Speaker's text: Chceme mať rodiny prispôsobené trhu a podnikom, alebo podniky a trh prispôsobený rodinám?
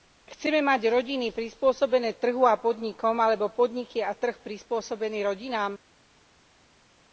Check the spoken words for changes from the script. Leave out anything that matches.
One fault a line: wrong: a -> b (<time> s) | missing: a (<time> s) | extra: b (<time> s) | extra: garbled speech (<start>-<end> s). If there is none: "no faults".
no faults